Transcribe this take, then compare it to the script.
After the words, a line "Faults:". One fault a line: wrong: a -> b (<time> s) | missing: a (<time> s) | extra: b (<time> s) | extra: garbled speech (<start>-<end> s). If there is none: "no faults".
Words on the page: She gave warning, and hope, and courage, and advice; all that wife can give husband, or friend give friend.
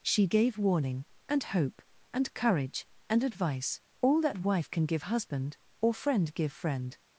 She gave warning, and hope, and courage, and advice; all that wife can give husband, or friend give friend.
Faults:
no faults